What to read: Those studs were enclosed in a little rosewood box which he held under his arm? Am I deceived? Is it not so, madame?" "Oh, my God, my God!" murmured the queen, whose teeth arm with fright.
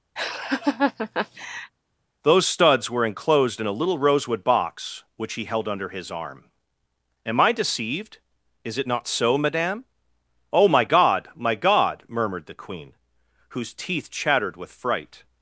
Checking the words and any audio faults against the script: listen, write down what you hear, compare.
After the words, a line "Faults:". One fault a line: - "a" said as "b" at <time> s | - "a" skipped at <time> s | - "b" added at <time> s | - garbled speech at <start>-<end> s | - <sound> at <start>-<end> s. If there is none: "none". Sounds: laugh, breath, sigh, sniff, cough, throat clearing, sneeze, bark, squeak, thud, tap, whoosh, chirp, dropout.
Those studs were enclosed in a little rosewood box which he held under his arm? Am I deceived? Is it not so, madame?" "Oh, my God, my God!" murmured the queen, whose teeth chattered with fright.
Faults:
- laugh at 0.2-1.7 s
- "arm" said as "chattered" at 14.1 s